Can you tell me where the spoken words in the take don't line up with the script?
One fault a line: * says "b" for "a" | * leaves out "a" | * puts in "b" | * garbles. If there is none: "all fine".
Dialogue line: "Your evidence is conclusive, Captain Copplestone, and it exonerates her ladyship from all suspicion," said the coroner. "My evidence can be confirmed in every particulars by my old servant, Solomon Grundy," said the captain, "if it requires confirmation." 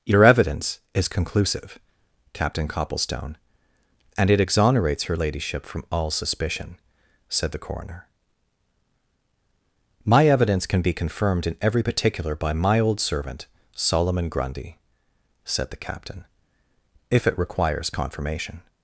* says "particular" for "particulars"